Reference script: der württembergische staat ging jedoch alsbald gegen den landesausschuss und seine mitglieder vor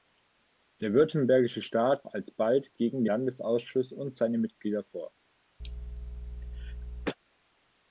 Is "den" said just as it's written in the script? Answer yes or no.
no